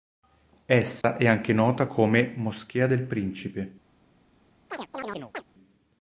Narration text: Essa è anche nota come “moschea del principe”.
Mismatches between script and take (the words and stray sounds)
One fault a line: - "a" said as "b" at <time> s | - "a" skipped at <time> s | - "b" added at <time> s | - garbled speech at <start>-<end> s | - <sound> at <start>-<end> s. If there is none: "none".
- dropout at 1.0-1.0 s
- chirp at 4.7-5.4 s